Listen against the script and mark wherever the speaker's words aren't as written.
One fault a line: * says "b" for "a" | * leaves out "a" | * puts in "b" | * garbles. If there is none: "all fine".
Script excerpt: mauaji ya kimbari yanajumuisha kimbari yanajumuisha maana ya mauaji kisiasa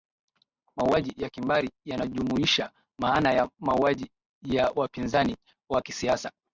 * says "maana ya mauaji" for "kimbari yanajumuisha maana"
* says "wapinzani wa" for "mauaji"